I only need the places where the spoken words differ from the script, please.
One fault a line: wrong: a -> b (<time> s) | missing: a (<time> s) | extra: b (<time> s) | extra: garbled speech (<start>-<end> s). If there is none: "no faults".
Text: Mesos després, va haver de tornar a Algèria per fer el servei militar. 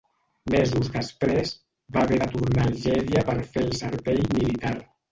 no faults